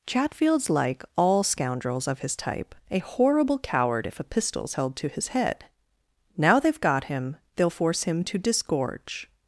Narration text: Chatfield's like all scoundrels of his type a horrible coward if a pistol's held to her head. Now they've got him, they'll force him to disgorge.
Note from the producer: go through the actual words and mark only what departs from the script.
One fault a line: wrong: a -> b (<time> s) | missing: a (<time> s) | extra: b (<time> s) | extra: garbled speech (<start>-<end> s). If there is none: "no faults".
wrong: her -> his (5.1 s)